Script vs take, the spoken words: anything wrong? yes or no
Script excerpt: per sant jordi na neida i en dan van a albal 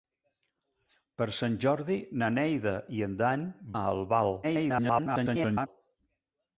yes